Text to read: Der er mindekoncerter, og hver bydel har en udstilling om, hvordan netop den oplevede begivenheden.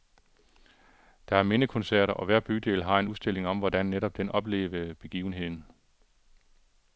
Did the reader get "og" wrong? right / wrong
right